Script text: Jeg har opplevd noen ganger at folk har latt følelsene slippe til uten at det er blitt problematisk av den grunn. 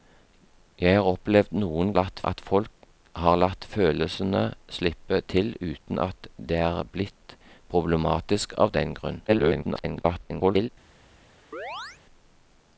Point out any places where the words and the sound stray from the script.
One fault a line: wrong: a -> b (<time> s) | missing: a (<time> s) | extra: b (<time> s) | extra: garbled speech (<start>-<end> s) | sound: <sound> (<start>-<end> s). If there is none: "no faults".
wrong: ganger -> latt (1.9 s)
extra: garbled speech (9.3-10.7 s)
sound: chirp (11.5-12.0 s)